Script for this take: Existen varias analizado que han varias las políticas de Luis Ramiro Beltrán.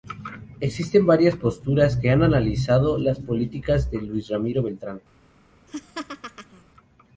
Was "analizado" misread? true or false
true